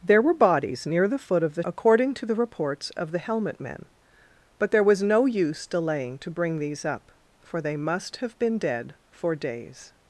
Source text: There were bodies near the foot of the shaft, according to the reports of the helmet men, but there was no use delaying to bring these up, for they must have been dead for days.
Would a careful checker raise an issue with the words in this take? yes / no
yes